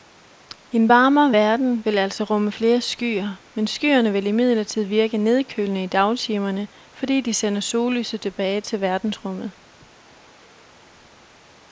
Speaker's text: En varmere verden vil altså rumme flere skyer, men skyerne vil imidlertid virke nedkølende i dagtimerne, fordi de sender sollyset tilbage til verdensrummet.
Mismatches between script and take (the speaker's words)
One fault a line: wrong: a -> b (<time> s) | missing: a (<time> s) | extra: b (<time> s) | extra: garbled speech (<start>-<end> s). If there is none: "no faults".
no faults